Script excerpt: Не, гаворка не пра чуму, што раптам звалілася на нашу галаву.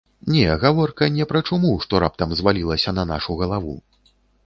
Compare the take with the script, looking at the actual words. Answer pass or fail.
pass